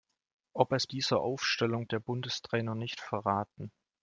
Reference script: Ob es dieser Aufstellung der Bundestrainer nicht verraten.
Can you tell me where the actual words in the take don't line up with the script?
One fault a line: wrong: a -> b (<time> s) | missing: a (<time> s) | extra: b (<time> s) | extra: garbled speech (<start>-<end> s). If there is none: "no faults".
no faults